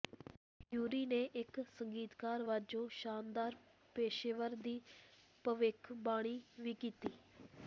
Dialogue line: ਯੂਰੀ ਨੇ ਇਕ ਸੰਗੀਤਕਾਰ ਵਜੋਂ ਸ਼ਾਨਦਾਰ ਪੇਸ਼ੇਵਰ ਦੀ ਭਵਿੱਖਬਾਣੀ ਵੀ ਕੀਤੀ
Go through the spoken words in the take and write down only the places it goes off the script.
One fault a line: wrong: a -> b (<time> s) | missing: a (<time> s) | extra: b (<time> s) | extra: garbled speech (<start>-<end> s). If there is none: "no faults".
no faults